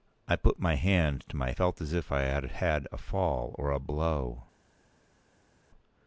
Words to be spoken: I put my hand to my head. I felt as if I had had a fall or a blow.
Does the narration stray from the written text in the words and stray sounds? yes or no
yes